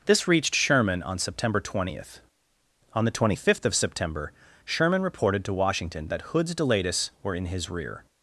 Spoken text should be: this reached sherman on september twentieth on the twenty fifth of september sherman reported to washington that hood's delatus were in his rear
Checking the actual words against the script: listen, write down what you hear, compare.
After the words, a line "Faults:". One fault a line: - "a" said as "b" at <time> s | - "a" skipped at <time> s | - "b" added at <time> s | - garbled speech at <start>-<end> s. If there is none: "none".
this reached sherman on september twentieth on the twenty fifth of september sherman reported to washington that hood's delatus were in his rear
Faults:
none